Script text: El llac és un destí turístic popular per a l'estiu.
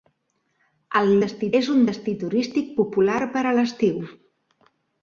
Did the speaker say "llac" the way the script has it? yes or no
no